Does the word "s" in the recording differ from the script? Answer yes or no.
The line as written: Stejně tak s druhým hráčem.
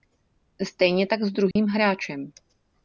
no